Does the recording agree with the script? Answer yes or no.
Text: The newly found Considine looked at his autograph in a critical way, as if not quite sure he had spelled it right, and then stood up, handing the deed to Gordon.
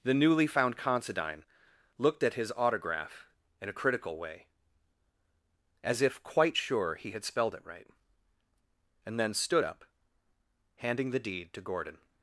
no